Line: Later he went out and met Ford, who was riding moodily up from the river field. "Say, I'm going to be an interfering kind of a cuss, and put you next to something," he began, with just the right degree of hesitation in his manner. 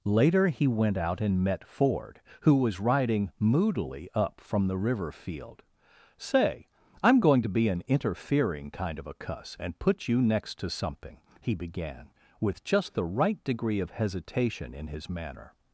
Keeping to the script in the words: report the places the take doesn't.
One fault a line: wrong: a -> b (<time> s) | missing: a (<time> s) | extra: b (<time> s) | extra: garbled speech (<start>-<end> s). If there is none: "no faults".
no faults